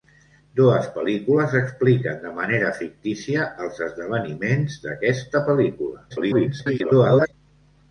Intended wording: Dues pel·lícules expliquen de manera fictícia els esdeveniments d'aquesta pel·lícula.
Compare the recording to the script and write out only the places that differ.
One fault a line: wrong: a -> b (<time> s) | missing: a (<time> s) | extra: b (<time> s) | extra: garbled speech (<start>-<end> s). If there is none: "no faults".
extra: garbled speech (6.1-7.3 s)